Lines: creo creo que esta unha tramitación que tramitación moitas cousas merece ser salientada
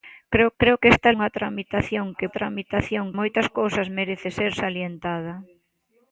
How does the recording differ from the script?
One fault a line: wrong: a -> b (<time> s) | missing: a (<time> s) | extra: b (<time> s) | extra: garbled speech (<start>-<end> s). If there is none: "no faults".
no faults